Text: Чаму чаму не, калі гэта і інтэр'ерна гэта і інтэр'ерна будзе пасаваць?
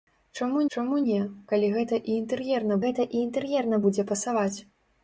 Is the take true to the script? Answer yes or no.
yes